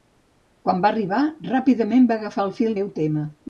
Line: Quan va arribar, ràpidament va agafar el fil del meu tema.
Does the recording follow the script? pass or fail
fail